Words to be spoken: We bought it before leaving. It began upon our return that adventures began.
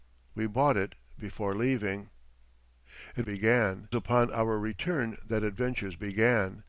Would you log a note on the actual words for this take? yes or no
no